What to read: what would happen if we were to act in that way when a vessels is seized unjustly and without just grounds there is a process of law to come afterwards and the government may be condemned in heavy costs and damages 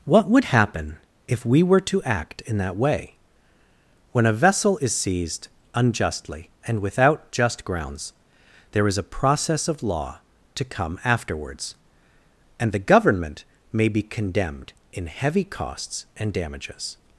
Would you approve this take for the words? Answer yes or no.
no